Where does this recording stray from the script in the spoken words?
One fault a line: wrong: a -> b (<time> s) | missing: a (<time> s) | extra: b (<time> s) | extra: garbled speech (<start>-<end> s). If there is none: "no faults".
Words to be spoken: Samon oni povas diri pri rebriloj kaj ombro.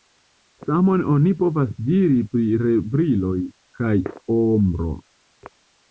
no faults